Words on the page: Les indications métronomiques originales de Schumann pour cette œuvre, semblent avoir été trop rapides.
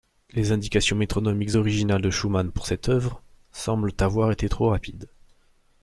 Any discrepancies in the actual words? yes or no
no